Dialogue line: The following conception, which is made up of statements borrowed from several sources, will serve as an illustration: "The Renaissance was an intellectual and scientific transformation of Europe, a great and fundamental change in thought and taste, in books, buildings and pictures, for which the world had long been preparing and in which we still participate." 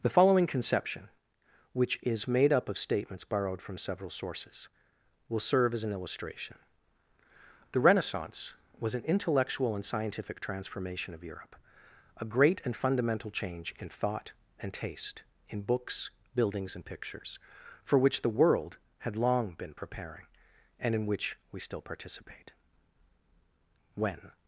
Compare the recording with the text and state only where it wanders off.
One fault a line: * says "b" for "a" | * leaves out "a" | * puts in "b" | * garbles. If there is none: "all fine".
* puts in "When"